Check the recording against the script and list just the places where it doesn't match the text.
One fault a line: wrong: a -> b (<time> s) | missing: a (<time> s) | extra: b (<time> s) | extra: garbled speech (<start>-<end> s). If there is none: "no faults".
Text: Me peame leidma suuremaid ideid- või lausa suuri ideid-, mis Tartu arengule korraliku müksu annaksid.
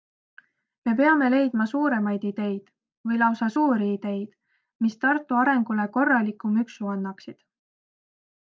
no faults